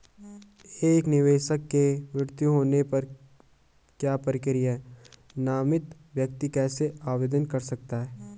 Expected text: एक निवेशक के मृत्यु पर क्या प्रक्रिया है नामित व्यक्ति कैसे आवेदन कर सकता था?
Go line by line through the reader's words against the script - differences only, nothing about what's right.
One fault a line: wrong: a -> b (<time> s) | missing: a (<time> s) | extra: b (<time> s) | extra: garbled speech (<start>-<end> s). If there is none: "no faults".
extra: होने (2.5 s)
wrong: था -> है (8.0 s)